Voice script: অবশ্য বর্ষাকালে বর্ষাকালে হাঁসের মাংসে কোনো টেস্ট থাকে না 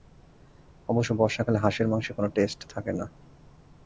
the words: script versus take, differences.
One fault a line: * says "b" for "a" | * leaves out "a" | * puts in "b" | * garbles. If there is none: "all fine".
* leaves out "বর্ষাকালে"